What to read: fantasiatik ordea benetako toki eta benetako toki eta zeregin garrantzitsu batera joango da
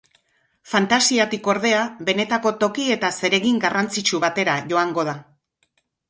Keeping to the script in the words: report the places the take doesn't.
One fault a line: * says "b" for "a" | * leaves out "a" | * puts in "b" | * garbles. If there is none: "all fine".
* leaves out "benetako toki eta"